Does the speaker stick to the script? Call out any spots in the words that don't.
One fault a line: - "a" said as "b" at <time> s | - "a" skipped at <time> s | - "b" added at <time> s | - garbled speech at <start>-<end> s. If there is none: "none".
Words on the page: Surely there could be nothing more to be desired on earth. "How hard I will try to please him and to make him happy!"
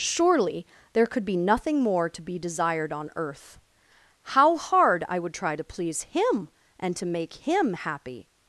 - "will" said as "would" at 5.2 s